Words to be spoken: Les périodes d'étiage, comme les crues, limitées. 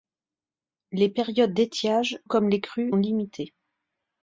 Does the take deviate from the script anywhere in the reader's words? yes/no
no